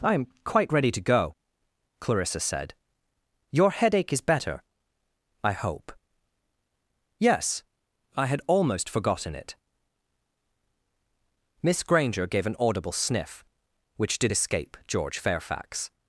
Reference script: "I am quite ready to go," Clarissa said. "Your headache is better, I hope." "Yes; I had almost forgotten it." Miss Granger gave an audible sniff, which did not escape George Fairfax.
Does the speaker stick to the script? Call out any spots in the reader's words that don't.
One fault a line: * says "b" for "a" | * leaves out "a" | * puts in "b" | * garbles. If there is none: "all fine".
* leaves out "not"